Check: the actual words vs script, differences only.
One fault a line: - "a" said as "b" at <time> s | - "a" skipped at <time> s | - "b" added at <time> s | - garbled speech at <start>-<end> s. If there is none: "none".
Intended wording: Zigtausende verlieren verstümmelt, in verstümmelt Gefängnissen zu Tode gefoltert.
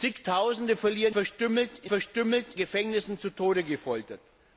none